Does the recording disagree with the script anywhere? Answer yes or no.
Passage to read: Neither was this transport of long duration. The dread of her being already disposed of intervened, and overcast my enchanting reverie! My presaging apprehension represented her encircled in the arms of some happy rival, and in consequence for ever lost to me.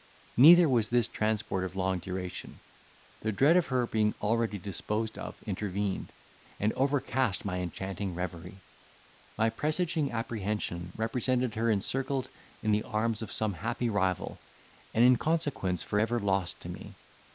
no